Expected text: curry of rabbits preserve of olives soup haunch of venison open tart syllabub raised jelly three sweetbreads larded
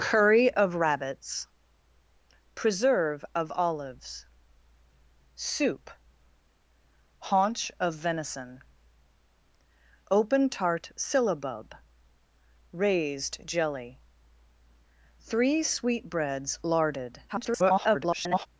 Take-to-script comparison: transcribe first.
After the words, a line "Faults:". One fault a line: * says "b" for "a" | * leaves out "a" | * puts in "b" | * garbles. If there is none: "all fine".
curry of rabbits preserve of olives soup haunch of venison open tart syllabub raised jelly three sweetbreads larded [garbled]
Faults:
* garbles